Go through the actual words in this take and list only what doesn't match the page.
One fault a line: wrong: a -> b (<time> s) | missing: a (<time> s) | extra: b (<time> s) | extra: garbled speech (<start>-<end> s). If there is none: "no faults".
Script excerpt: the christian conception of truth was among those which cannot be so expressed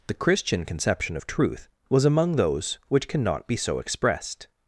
no faults